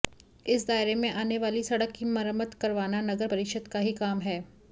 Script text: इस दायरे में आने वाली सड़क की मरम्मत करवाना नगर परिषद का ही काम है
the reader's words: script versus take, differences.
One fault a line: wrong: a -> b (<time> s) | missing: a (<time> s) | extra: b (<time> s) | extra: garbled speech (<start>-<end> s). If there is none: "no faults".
no faults